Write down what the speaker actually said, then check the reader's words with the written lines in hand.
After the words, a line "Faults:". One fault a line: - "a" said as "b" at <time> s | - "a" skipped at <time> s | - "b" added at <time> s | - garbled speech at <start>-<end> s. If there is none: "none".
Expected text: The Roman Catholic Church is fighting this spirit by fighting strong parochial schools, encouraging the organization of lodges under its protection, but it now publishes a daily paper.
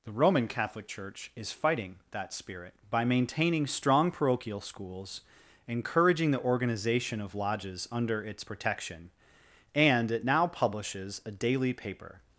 The Roman Catholic Church is fighting that spirit by maintaining strong parochial schools, encouraging the organization of lodges under its protection, and it now publishes a daily paper.
Faults:
- "this" said as "that" at 2.1 s
- "fighting" said as "maintaining" at 3.0 s
- "but" said as "and" at 9.7 s